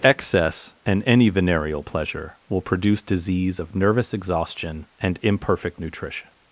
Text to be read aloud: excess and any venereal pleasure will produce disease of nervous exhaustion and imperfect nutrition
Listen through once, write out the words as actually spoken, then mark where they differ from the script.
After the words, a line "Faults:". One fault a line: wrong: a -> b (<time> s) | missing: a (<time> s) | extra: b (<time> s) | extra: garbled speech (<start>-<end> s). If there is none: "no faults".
excess and any venereal pleasure will produce disease of nervous exhaustion and imperfect nutrition
Faults:
no faults